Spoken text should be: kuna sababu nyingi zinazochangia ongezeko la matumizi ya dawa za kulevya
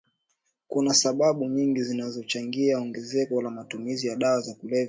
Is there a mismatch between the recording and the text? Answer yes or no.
no